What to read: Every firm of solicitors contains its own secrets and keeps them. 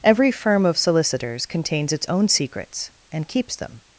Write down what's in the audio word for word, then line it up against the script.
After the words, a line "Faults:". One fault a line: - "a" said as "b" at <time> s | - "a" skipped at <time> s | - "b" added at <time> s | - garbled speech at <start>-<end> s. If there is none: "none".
Every firm of solicitors contains its own secrets and keeps them.
Faults:
none